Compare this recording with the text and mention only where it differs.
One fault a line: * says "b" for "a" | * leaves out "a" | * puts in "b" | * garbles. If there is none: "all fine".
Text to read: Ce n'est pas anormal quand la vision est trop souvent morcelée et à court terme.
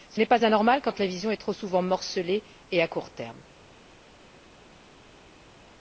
all fine